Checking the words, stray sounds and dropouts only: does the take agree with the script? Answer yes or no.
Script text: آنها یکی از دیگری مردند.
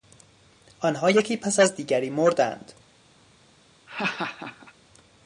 no